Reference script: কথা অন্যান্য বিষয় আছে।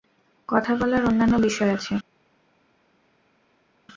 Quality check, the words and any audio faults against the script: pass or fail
fail